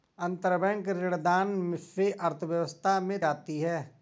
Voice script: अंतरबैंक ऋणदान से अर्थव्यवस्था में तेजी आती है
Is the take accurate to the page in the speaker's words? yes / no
no